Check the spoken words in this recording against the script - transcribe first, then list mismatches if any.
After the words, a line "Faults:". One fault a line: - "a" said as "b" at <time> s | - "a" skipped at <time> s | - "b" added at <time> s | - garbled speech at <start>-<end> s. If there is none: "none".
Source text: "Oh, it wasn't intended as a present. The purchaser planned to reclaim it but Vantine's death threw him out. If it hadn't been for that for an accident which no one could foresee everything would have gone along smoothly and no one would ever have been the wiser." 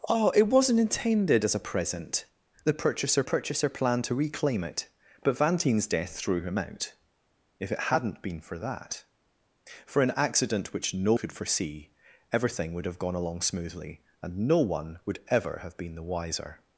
"Oh, it wasn't intended as a present. The purchaser purchaser planned to reclaim it but Vantine's death threw him out. If it hadn't been for that for an accident which no could foresee everything would have gone along smoothly and no one would ever have been the wiser."
Faults:
- "purchaser" added at 3.2 s
- "one" skipped at 11.1 s